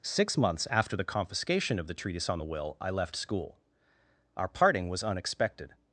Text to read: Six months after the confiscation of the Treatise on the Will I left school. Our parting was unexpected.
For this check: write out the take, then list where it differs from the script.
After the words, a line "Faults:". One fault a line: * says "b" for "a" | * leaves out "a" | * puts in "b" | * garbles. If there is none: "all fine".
Six months after the confiscation of the Treatise on the Will I left school. Our parting was unexpected.
Faults:
all fine